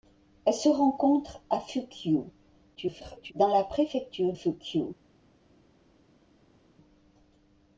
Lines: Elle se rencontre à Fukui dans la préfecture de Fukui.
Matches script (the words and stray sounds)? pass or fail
fail